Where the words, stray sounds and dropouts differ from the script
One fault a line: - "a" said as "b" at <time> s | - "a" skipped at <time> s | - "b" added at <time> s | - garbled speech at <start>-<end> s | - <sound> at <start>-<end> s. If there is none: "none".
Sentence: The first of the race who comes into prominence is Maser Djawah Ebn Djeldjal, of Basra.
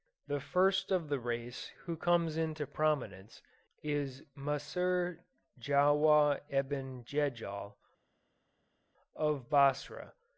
none